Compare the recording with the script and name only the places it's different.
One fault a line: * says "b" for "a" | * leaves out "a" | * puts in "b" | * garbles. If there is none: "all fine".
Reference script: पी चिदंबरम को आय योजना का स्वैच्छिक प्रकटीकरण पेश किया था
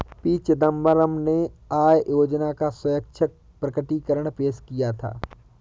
* says "ने" for "को"